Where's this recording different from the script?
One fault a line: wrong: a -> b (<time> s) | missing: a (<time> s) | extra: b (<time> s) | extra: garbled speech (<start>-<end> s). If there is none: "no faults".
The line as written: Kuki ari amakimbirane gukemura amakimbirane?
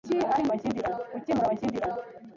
no faults